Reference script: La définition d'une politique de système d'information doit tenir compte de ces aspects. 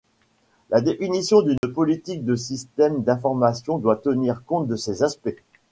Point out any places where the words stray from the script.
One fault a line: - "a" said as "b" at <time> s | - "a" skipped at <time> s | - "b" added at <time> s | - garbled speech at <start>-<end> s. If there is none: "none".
none